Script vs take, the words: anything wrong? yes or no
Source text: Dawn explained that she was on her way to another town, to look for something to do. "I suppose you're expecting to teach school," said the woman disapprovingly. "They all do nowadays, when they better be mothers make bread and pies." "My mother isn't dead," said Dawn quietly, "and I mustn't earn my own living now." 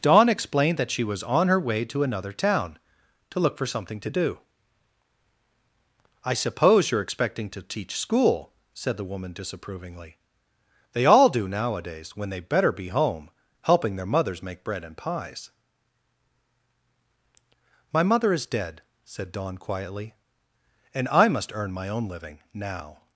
yes